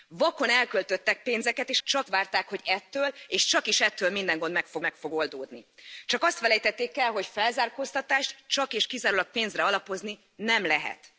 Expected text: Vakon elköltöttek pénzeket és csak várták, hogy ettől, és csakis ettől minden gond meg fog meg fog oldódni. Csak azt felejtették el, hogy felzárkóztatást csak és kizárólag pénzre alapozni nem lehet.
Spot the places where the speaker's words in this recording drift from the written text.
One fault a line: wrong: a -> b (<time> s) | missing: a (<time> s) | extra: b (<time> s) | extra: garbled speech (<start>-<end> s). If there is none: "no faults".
no faults